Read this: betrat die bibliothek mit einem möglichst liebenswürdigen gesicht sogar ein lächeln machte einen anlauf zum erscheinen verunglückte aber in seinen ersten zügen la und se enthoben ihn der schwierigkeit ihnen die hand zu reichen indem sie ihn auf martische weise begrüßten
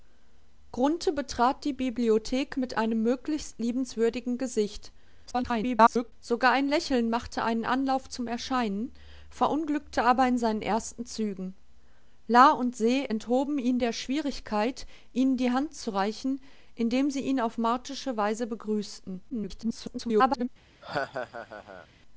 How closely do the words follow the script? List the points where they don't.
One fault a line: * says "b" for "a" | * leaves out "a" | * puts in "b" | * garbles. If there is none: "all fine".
* garbles
* garbles